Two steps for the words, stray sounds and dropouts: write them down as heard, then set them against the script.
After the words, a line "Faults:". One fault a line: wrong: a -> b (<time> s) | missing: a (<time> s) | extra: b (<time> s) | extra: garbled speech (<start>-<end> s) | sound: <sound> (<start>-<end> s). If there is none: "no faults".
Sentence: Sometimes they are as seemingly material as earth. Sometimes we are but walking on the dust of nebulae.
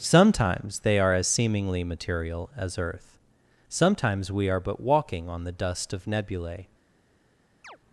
Sometimes they are as seemingly material as earth. Sometimes we are but walking on the dust of nebulae.
Faults:
sound: chirp (7.6-7.8 s)